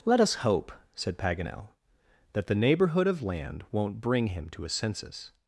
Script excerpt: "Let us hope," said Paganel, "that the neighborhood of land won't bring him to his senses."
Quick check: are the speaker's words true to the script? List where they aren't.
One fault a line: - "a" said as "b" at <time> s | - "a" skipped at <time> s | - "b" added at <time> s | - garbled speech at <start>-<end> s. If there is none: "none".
none